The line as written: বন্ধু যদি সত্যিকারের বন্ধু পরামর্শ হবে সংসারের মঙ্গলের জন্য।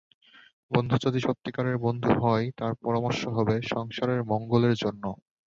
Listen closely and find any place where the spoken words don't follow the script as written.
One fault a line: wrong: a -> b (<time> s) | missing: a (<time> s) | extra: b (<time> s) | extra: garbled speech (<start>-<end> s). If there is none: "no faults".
extra: হয় তার (2.2 s)